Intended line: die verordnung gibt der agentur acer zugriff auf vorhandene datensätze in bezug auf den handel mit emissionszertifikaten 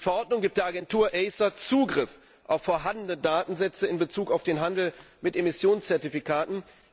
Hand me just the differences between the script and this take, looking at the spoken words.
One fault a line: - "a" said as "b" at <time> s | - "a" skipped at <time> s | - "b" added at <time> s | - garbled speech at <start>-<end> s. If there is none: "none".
none